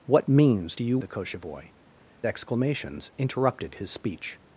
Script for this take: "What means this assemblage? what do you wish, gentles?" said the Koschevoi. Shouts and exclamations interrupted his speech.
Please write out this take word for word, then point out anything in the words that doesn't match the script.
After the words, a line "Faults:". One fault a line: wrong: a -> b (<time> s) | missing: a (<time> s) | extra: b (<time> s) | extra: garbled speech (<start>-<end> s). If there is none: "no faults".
"What means do you the Koschevoi. Exclamations interrupted his speech.
Faults:
missing: this assemblage what (0.8 s)
missing: wish gentles said (1.0 s)
missing: Shouts and (1.7 s)